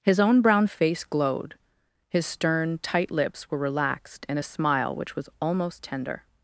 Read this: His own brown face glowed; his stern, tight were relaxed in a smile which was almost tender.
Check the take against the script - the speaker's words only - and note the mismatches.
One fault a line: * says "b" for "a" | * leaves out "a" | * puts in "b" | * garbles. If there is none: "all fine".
* puts in "lips"